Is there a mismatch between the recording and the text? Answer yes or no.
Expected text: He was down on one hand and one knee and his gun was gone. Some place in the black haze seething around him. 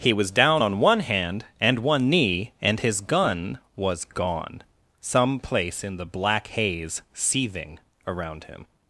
no